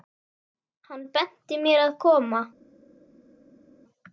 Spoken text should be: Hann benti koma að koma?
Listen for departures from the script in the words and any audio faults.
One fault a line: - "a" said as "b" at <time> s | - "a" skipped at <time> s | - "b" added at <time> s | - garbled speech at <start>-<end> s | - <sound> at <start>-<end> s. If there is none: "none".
- "koma" said as "mér" at 1.7 s